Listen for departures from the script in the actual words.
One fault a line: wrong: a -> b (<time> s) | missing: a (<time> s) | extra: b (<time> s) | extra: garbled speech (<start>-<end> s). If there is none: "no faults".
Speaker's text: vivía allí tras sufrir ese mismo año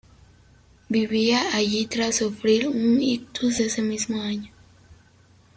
extra: un ictus (2.7 s)